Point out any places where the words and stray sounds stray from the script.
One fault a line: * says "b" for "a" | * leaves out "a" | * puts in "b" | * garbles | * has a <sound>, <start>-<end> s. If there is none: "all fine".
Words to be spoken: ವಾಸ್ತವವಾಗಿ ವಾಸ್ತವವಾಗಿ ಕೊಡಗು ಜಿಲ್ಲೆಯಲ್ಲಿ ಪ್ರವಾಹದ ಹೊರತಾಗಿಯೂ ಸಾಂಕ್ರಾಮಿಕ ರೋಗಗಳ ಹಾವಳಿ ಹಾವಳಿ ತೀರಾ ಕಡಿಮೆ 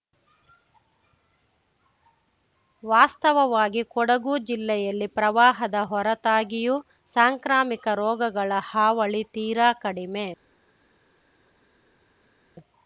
* leaves out "ವಾಸ್ತವವಾಗಿ"
* leaves out "ಹಾವಳಿ"